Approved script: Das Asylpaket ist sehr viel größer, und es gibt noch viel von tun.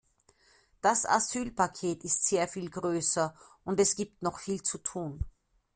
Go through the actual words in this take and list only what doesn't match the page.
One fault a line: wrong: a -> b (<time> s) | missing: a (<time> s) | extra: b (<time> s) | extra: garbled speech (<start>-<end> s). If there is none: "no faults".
wrong: von -> zu (4.6 s)